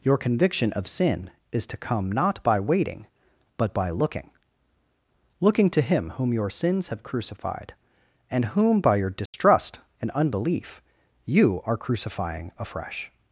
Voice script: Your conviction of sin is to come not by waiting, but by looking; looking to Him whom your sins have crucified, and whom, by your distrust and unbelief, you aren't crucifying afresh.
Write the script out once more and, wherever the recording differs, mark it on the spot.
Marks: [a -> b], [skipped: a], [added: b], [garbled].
Your conviction of sin is to come not by waiting, but by looking; looking to Him whom your sins have crucified, and whom, by your distrust and unbelief, you [aren't -> are] crucifying afresh.